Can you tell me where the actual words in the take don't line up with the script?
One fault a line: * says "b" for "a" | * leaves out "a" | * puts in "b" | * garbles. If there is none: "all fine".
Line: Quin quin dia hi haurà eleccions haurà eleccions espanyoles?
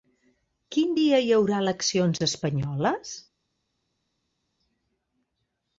* leaves out "quin"
* leaves out "haurà eleccions"